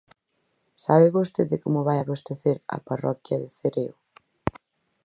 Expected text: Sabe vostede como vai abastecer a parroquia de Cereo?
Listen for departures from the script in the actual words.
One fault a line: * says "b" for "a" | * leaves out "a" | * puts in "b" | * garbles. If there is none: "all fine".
all fine